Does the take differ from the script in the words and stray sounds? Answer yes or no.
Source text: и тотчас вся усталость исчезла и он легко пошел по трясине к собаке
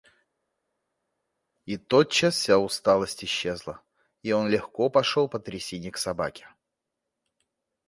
no